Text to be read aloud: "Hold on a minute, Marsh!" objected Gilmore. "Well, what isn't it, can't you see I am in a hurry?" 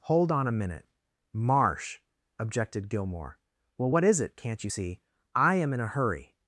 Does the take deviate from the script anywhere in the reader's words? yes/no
yes